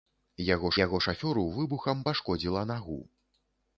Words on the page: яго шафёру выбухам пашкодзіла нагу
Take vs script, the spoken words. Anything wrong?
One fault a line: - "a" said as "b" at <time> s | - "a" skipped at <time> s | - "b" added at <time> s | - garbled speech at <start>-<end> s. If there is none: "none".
- "яго" added at 0.8 s